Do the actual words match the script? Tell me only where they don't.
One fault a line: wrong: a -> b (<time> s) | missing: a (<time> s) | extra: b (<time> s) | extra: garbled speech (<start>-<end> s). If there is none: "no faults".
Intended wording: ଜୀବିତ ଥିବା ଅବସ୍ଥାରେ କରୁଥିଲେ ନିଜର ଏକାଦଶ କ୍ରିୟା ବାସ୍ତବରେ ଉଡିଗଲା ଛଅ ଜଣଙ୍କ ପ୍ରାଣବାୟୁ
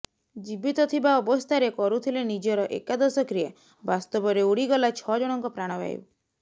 no faults